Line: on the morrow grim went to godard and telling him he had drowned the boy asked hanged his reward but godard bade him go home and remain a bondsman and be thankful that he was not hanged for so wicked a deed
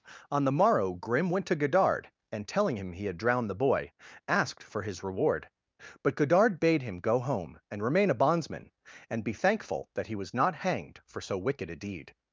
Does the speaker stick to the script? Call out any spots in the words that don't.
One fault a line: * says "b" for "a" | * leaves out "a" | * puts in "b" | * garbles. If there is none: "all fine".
* says "for" for "hanged"